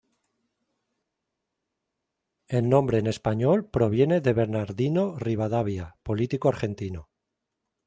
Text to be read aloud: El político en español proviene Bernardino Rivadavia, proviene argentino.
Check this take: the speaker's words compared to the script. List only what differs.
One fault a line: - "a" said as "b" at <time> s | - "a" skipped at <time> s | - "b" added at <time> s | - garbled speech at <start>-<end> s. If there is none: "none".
- "político" said as "nombre" at 2.7 s
- "de" added at 4.2 s
- "proviene" said as "político" at 6.0 s